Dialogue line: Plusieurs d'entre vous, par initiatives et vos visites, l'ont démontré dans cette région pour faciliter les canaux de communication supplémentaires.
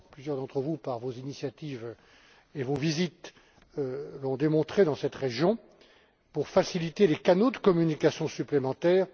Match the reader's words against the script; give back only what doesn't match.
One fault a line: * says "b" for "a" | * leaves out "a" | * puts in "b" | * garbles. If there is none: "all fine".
* puts in "vos"